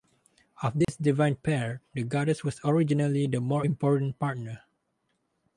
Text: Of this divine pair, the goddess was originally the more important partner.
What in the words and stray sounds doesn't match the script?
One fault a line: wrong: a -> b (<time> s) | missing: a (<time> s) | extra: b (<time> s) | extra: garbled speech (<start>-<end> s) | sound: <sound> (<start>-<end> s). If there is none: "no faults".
sound: dropout (0.8-0.9 s)